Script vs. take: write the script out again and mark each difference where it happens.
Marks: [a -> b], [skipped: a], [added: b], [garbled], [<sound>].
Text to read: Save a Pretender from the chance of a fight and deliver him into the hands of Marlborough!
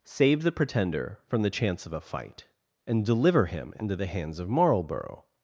Save [a -> the] Pretender from the chance of a fight and deliver him into the hands of Marlborough!